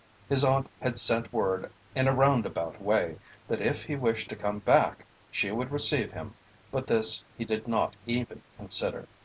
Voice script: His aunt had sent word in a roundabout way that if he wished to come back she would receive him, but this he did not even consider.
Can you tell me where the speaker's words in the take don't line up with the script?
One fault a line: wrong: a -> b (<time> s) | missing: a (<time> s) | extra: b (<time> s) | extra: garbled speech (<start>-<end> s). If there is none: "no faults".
no faults